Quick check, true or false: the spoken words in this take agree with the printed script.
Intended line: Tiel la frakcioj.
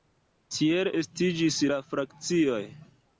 false